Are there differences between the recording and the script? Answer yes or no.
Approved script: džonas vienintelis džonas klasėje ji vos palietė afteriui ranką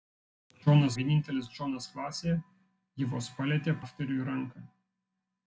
no